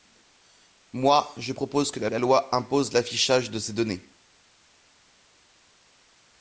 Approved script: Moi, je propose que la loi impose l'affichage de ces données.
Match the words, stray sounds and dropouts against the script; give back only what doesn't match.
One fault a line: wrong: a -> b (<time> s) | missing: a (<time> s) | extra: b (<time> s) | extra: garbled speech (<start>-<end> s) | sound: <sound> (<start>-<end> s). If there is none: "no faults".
extra: la (2.1 s)